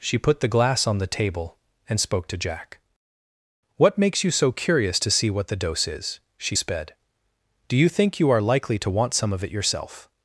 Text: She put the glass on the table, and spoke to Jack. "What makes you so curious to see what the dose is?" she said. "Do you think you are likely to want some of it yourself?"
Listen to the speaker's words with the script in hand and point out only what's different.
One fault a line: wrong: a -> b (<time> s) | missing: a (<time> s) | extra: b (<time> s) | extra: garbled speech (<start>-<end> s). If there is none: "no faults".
wrong: said -> sped (6.5 s)